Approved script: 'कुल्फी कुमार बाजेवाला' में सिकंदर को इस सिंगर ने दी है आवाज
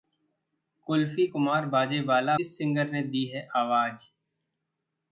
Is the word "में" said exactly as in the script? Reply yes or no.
no